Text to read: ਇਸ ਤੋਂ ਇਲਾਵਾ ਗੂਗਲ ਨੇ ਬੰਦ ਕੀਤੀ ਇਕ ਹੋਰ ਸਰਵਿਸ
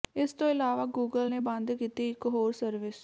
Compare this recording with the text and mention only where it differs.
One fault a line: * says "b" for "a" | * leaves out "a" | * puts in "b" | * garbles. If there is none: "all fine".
all fine